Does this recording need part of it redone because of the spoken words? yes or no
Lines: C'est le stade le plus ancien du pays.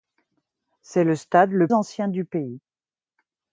yes